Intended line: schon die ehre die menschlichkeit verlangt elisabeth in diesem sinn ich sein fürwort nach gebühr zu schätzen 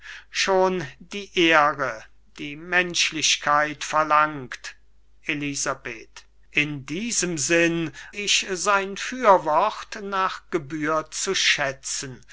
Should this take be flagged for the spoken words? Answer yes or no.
no